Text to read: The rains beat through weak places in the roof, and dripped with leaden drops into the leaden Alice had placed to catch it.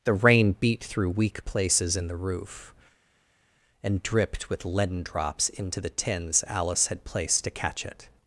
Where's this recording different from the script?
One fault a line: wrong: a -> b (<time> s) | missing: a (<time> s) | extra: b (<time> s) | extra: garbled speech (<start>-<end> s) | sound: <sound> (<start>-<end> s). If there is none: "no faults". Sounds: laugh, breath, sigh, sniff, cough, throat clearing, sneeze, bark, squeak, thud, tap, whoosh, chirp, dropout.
wrong: rains -> rain (0.1 s)
wrong: leaden -> tins (5.9 s)